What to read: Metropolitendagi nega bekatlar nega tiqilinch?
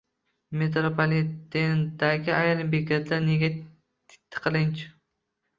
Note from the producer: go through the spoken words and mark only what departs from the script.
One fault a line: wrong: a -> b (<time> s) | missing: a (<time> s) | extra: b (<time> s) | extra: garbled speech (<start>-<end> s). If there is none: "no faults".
wrong: nega -> ayrim (2.4 s)